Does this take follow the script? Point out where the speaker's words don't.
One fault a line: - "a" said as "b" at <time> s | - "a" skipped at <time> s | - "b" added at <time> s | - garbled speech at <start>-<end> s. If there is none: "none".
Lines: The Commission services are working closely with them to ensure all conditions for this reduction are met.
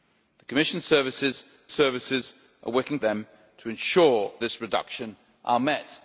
- "services" added at 1.7 s
- "closely with" skipped at 3.0 s
- "all conditions for" skipped at 4.3 s